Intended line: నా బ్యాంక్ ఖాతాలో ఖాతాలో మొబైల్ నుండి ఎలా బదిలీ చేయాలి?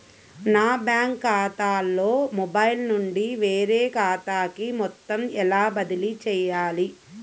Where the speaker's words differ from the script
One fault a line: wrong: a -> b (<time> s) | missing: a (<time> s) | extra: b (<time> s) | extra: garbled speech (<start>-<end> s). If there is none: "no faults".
missing: ఖాతాలో (2.1 s)
extra: వేరే ఖాతాకి మొత్తం (3.4 s)